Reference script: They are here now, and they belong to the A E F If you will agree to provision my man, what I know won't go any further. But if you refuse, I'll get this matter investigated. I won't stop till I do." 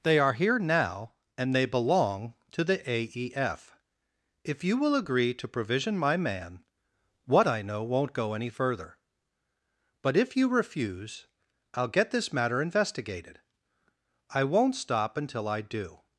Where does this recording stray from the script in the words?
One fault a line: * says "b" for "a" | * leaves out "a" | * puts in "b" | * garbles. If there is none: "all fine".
* says "until" for "till"